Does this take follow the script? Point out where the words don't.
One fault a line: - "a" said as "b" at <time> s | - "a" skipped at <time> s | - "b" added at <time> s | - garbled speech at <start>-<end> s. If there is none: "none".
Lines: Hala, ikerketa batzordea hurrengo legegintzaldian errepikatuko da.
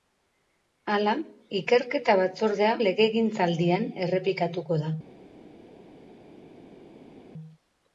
- "hurrengo" skipped at 2.7 s